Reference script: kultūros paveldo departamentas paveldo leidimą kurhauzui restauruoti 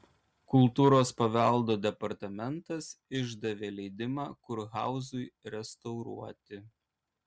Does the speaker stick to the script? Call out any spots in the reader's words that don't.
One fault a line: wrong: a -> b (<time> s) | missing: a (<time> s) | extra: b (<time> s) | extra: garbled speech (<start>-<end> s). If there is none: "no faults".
wrong: paveldo -> išdavė (3.2 s)